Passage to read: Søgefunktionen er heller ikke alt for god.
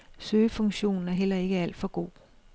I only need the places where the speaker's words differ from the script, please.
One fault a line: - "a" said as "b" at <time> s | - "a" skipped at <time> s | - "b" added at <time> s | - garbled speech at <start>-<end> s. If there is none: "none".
none